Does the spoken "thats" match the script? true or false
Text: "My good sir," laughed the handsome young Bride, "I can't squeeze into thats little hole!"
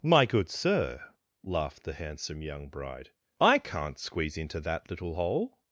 false